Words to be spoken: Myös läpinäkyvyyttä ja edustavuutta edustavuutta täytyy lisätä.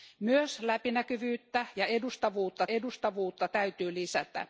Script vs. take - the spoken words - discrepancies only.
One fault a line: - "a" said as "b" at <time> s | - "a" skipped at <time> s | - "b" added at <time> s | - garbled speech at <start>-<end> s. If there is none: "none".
none